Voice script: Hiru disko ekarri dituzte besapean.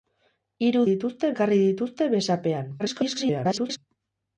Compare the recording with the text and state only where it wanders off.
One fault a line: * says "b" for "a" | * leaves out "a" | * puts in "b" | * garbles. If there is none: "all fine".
* says "dituzte" for "disko"
* garbles